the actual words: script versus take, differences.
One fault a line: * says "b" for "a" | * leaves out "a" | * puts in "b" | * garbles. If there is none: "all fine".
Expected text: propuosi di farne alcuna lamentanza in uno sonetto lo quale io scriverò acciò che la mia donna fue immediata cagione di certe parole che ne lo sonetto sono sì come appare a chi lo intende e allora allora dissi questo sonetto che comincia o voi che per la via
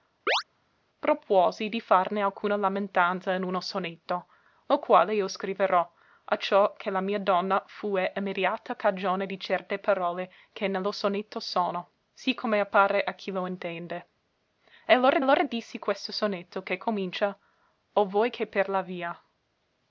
all fine